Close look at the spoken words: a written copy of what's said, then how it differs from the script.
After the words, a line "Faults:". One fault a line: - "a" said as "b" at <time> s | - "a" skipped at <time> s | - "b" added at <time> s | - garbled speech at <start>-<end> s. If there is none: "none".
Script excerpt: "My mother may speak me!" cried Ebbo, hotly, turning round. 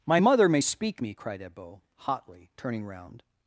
"My mother may speak me!" cried Ebbo, hotly, turning round.
Faults:
none